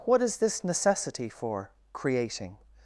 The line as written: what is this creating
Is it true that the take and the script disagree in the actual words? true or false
true